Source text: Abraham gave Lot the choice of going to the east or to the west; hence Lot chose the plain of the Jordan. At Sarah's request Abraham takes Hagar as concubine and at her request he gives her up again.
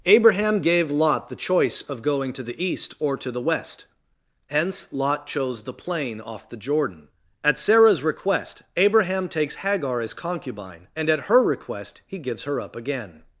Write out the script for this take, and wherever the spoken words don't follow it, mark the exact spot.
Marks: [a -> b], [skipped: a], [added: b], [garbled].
Abraham gave Lot the choice of going to the east or to the west; hence Lot chose the plain [of -> off] the Jordan. At Sarah's request Abraham takes Hagar as concubine and at her request he gives her up again.